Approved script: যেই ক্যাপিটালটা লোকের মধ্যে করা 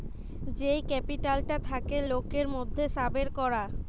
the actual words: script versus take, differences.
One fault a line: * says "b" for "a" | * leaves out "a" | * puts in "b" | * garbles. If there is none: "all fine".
* puts in "থাকে"
* puts in "সাবের"